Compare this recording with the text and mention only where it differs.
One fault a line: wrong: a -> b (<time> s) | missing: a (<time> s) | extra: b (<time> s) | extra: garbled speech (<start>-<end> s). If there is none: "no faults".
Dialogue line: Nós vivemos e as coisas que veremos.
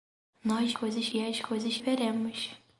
wrong: vivemos -> coisas (0.7 s)
missing: que (1.8 s)